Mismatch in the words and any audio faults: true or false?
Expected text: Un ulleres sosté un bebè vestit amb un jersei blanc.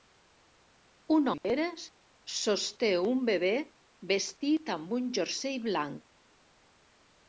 true